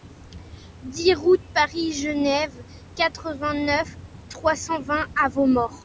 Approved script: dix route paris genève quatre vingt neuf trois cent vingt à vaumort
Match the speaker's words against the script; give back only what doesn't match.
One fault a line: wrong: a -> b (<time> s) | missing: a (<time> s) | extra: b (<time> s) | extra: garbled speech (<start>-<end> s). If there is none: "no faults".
no faults